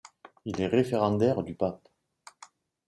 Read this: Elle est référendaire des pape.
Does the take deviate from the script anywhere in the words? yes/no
yes